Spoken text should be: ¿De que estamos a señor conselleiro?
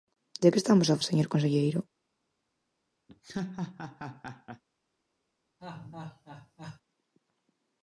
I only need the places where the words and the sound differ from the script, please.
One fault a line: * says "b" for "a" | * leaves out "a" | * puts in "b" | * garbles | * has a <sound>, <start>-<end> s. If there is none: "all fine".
* has a laugh, 3.1-4.6 s
* has a laugh, 5.6-6.8 s